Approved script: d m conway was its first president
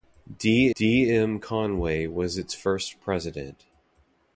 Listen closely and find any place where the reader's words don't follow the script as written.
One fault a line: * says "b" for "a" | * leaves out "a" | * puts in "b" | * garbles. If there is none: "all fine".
* puts in "d"